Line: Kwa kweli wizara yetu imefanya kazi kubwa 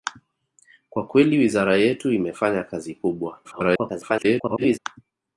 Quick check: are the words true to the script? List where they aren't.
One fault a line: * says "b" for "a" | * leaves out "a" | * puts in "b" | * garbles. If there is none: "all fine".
* garbles